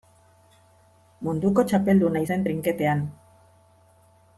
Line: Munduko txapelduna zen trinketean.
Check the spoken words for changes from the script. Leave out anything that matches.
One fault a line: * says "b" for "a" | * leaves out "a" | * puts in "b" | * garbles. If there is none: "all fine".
all fine